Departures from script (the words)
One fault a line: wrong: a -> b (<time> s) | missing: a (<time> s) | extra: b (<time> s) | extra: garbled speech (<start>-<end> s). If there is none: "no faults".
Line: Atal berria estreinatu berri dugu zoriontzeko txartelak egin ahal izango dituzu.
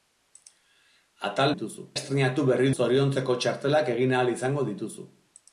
wrong: berria -> dituzu (1.5 s)
missing: dugu (2.7 s)